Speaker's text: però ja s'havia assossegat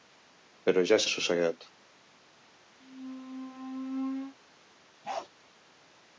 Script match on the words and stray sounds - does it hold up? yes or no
no